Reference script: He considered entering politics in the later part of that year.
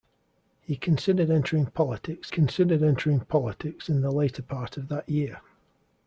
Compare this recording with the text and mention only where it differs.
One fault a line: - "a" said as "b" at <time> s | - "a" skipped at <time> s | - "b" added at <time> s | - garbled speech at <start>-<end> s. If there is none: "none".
- "considered entering politics" added at 2.3 s